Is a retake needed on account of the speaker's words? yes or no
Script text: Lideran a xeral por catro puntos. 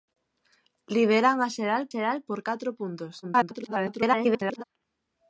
yes